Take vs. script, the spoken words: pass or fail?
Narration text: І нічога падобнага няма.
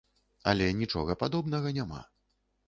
fail